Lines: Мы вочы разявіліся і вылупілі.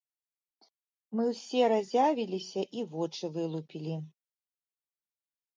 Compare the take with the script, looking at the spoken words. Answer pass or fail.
fail